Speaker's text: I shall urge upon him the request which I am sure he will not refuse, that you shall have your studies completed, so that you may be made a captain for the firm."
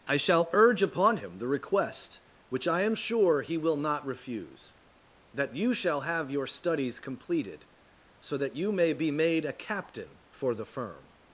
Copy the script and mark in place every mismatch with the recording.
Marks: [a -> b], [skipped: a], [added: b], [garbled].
I shall urge upon him the request which I am sure he will not refuse, that you shall have your studies completed, so that you may be made a captain for the firm."